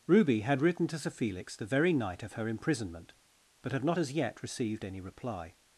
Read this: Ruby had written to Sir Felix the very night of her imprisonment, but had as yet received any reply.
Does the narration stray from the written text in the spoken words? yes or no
yes